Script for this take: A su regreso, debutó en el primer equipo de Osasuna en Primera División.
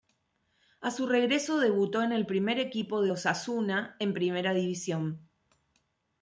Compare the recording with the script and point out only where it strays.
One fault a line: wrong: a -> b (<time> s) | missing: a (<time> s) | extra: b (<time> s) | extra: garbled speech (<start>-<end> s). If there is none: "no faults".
no faults